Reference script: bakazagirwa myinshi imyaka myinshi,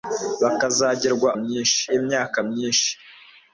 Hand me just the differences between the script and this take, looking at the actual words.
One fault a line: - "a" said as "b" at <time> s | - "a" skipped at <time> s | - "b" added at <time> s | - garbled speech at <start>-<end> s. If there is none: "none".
none